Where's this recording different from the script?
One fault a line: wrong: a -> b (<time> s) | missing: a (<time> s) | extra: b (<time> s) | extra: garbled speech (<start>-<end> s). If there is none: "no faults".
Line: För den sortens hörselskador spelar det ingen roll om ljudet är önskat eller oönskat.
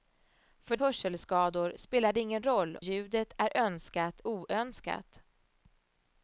missing: den sortens (0.8 s)
missing: om (2.8 s)
missing: eller (4.2 s)